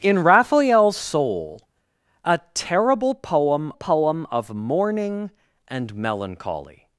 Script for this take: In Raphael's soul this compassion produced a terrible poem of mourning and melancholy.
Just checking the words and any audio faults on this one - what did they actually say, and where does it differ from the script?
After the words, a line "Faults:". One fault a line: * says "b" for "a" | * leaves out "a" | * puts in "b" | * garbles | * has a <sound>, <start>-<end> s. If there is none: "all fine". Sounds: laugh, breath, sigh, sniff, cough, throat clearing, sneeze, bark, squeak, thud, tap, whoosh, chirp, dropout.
In Raphael's soul a terrible poem poem of mourning and melancholy.
Faults:
* leaves out "this compassion produced"
* puts in "poem"